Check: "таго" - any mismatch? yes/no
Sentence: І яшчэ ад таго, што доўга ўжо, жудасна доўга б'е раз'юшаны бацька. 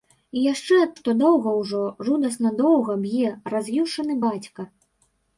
yes